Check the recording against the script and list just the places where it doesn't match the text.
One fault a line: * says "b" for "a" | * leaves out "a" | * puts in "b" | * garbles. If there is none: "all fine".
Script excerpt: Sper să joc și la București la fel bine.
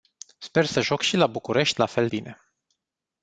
all fine